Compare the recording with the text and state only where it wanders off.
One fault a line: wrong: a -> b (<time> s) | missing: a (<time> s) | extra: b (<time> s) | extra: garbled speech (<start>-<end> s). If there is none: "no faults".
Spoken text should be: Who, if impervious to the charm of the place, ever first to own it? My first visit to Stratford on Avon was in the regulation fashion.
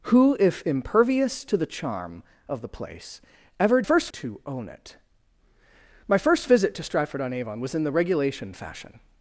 no faults